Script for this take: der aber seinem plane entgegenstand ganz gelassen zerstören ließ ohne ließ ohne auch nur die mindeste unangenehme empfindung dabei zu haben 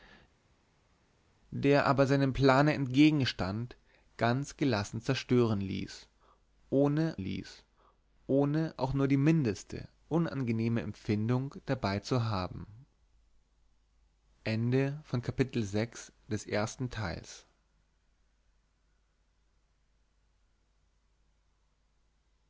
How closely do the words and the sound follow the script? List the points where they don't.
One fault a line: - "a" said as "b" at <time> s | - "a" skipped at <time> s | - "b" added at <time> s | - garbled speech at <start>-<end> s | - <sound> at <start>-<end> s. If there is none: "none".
none